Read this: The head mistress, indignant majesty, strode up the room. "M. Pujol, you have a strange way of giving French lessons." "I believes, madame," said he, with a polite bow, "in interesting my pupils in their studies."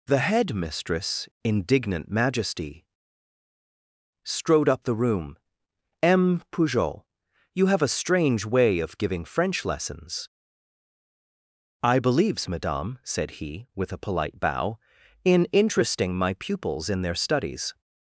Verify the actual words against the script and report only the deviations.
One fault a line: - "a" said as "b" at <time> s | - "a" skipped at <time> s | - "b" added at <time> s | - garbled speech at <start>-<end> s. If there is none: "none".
none